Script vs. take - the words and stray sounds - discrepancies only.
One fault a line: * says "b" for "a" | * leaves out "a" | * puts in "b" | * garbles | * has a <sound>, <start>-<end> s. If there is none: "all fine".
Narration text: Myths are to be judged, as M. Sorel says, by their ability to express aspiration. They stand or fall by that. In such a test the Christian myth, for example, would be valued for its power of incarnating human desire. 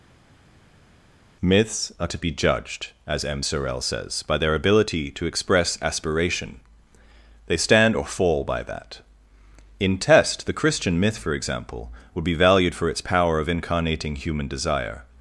* leaves out "such a"